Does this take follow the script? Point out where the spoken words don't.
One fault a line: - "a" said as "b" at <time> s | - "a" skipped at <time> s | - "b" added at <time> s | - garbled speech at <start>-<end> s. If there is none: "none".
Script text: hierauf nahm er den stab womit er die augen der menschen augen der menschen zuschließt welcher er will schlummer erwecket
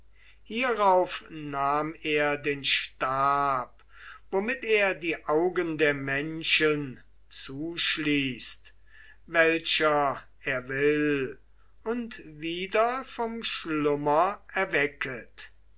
- "augen der menschen" skipped at 7.0 s
- "und wieder vom" added at 11.8 s